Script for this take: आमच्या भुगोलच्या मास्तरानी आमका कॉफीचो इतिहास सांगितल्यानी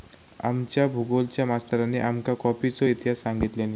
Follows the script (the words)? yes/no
yes